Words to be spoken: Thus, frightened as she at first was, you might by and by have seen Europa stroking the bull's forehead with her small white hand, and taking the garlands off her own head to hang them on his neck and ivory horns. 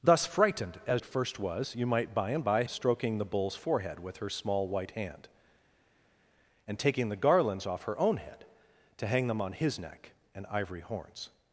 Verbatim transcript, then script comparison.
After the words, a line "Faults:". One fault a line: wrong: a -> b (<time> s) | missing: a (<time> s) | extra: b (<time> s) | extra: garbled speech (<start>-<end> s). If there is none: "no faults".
Thus, frightened as at first was, you might by and by stroking the bull's forehead with her small white hand, and taking the garlands off her own head to hang them on his neck and ivory horns.
Faults:
missing: she (1.0 s)
missing: have seen Europa (2.6 s)